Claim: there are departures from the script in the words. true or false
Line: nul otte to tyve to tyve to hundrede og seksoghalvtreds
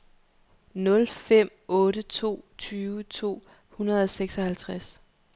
true